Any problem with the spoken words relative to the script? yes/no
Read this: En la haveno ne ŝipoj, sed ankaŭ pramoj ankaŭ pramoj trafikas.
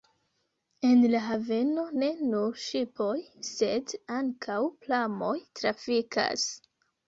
yes